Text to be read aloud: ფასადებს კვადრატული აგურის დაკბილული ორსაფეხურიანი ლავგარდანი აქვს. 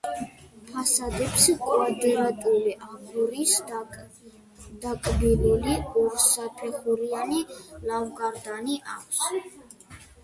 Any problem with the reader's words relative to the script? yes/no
no